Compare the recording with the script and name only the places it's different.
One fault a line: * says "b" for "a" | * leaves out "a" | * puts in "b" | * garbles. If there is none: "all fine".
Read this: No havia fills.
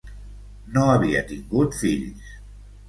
* puts in "tingut"